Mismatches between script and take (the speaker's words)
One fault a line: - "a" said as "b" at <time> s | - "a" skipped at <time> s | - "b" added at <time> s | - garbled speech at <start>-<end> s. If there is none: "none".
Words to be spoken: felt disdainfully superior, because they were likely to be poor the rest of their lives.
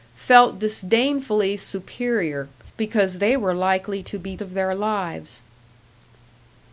- "poor the rest" skipped at 4.4 s